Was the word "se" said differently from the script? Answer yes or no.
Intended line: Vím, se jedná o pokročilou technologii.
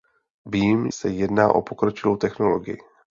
no